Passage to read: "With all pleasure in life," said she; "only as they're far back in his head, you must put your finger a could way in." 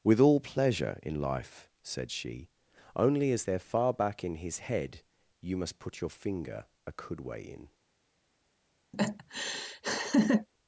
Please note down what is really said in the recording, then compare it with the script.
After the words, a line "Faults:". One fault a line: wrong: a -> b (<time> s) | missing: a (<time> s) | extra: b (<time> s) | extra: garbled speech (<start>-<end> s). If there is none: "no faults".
"With all pleasure in life," said she; "only as they're far back in his head, you must put your finger a could way in."
Faults:
no faults